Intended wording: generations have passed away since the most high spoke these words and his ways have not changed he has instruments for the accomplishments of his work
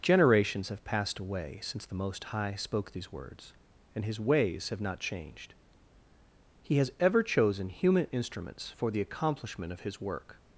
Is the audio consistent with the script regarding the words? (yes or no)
no